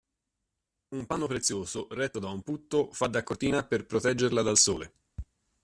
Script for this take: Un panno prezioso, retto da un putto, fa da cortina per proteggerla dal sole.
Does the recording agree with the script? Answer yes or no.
yes